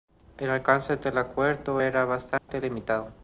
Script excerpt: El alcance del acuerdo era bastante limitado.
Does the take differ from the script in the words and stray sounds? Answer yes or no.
yes